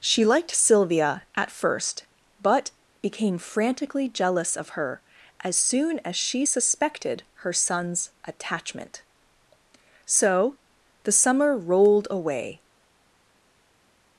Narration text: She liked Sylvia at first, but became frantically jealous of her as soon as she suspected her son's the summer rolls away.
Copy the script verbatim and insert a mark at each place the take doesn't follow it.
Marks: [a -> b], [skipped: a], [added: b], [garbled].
She liked Sylvia at first, but became frantically jealous of her as soon as she suspected her son's [added: attachment So] the summer [rolls -> rolled] away.